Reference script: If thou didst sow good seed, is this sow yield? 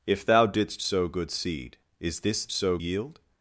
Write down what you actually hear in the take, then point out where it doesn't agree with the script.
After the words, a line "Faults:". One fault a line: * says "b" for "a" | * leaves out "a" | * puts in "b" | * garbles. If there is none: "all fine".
If thou didst sow good seed, is this sow yield?
Faults:
all fine